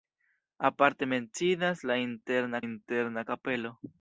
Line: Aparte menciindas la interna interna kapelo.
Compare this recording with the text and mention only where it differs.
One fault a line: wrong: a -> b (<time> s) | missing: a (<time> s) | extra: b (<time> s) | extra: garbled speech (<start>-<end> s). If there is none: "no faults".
no faults